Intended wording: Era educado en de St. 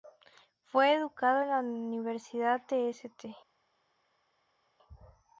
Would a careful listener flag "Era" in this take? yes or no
yes